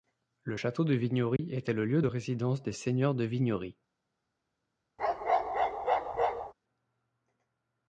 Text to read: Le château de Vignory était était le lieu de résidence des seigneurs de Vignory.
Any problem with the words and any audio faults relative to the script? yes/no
yes